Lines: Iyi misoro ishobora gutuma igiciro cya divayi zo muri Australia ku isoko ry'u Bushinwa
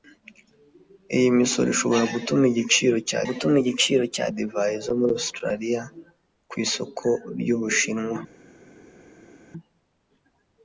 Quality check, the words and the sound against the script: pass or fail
fail